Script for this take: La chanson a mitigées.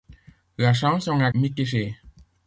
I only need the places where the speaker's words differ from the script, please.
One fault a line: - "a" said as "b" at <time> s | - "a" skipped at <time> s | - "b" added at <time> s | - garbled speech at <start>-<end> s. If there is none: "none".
none